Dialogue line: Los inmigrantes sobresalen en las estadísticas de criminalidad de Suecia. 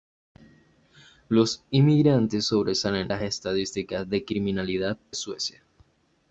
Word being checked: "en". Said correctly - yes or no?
no